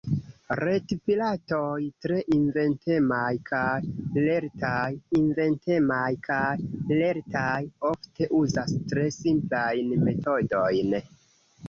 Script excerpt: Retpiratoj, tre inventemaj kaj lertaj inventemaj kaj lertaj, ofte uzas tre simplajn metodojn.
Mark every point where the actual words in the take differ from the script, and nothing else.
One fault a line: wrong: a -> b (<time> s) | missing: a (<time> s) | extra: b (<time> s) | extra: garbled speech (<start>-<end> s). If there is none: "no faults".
no faults